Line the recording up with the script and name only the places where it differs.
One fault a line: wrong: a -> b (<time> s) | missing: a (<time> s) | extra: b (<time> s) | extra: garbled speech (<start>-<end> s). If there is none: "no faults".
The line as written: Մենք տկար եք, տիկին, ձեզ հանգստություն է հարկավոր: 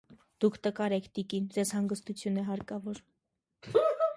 wrong: Մենք -> Դուք (0.4 s)